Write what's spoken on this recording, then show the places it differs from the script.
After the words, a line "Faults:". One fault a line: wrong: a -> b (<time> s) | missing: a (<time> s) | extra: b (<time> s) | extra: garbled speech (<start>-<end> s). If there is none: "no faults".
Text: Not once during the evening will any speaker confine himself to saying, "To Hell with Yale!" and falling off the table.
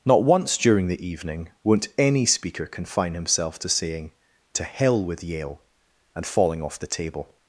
Not once during the evening won't any speaker confine himself to saying, "To Hell with Yale!" and falling off the table.
Faults:
wrong: will -> won't (1.6 s)